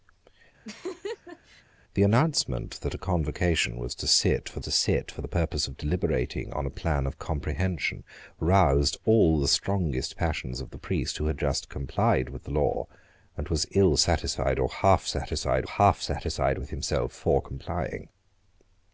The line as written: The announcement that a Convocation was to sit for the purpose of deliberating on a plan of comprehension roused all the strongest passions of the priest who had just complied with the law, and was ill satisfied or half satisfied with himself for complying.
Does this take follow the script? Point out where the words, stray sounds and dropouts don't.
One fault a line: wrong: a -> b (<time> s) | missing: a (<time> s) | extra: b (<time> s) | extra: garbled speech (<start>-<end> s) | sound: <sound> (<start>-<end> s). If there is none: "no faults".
sound: laugh (0.6-1.6 s)
extra: to sit for (4.6 s)
extra: half satisfied (15.7 s)